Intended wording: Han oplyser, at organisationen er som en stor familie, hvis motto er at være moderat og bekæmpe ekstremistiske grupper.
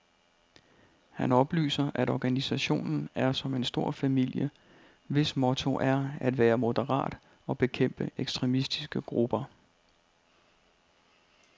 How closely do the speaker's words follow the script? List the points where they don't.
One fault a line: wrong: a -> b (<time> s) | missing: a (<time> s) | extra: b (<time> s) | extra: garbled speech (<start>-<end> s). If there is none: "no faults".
no faults